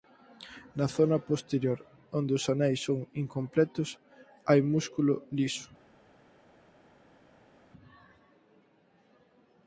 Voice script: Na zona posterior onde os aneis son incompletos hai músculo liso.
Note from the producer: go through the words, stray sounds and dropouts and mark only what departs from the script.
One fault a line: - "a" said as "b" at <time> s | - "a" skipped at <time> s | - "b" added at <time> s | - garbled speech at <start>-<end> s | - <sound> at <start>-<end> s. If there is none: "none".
none